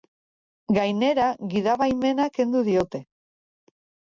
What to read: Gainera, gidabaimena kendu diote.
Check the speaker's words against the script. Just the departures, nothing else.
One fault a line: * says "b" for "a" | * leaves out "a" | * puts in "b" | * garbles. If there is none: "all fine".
all fine